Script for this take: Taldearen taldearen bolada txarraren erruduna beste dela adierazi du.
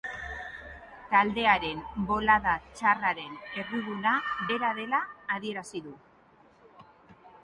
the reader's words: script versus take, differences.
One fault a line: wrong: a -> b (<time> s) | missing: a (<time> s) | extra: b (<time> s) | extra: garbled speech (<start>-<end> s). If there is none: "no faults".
missing: taldearen (1.8 s)
wrong: beste -> bera (4.5 s)